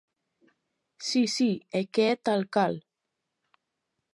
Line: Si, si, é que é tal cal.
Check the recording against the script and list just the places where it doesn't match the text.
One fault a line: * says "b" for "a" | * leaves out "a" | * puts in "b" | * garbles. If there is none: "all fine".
all fine